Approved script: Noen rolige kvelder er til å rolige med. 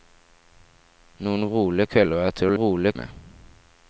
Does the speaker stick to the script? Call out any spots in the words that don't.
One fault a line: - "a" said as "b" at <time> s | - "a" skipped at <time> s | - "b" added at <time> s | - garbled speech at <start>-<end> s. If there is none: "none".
none